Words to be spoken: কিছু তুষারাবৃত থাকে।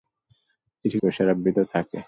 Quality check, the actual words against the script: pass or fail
pass